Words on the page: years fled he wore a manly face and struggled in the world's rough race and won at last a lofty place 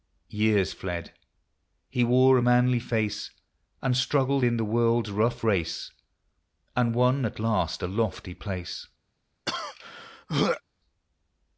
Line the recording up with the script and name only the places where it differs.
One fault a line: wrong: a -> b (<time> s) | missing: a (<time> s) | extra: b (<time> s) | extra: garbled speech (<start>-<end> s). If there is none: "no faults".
no faults